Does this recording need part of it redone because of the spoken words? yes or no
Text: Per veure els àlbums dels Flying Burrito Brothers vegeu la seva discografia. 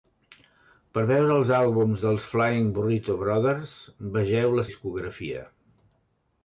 yes